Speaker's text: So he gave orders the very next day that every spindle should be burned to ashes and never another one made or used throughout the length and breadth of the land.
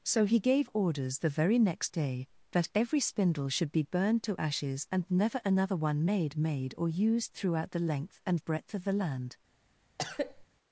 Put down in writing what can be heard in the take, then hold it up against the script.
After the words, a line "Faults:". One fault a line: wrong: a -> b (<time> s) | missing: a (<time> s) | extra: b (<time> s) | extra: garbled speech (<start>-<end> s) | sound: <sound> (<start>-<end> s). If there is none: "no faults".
So he gave orders the very next day that every spindle should be burned to ashes and never another one made made or used throughout the length and breadth of the land.
Faults:
extra: made (6.3 s)
sound: cough (10.0-10.5 s)